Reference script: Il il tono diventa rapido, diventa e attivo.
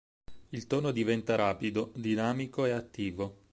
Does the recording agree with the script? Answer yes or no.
no